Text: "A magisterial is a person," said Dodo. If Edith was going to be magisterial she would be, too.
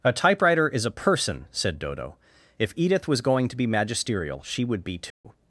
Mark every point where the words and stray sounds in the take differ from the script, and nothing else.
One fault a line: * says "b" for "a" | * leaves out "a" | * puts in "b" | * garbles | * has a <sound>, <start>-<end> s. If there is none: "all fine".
* says "typewriter" for "magisterial"
* has a dropout, 5.1-5.2 s